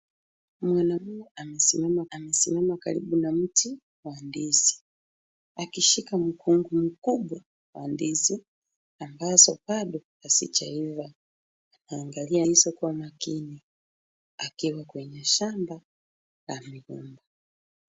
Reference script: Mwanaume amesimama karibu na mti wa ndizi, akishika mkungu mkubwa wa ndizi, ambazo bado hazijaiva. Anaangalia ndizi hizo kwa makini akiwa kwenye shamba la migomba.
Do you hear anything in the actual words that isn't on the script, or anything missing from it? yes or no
yes